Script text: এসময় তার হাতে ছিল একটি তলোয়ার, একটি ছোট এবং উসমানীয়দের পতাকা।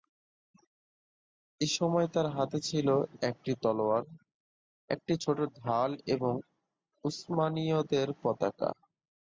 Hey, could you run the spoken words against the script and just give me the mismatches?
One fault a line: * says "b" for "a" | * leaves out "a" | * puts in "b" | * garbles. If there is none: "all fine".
* puts in "ঢাল"